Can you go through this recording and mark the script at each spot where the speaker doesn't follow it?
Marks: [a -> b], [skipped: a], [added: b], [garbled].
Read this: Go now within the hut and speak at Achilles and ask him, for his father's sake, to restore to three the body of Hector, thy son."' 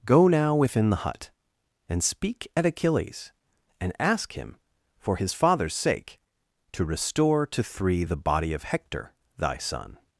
Go now within the hut and speak at Achilles and ask him, for his father's sake, to restore to three the body of Hector, thy son."'